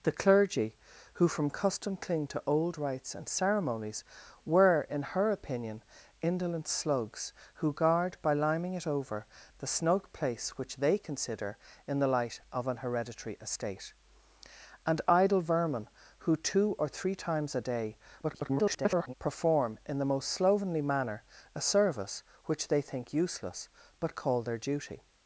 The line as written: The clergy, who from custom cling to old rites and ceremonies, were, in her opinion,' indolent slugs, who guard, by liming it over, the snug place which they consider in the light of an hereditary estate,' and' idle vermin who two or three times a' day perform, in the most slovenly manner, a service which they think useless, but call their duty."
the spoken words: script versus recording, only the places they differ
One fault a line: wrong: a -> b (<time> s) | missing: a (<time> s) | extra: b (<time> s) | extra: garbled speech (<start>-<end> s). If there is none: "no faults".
extra: garbled speech (18.2-19.1 s)